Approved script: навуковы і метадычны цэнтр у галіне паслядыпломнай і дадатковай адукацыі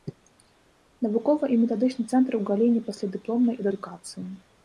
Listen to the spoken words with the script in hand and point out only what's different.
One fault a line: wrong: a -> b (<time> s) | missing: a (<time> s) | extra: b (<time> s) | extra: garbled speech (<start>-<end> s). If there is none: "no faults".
missing: дадатковай (3.7 s)